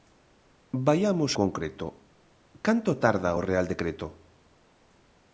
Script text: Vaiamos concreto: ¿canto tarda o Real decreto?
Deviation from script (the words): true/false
false